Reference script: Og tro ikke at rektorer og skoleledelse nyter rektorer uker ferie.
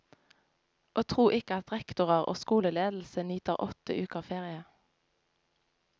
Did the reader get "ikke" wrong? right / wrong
right